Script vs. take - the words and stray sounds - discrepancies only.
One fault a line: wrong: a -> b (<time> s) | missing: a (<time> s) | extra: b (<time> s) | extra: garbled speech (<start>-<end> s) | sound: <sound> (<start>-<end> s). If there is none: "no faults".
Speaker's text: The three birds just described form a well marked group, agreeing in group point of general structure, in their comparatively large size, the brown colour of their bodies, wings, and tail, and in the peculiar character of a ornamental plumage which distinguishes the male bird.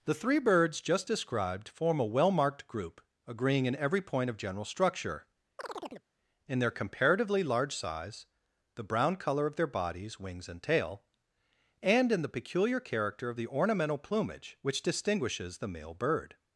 wrong: group -> every (3.7 s)
sound: chirp (5.6-6.1 s)
wrong: a -> the (13.3 s)